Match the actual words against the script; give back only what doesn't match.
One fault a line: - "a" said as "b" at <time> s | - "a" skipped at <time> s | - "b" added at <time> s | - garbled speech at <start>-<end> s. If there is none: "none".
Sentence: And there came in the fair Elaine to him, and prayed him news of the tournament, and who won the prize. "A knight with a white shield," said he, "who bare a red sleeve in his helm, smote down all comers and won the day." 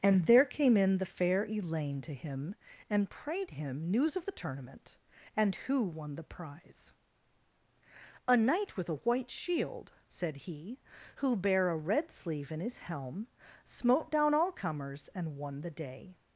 none